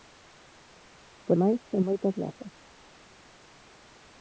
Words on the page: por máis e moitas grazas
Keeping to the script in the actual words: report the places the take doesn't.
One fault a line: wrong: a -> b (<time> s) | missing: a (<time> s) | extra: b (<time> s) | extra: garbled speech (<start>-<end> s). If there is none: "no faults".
no faults